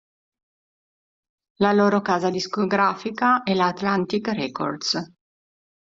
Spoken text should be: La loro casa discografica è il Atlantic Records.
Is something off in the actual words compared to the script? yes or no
yes